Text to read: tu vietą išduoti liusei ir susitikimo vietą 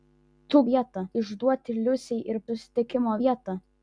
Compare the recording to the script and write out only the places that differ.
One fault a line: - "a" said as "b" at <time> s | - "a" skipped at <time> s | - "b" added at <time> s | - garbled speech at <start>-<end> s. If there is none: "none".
none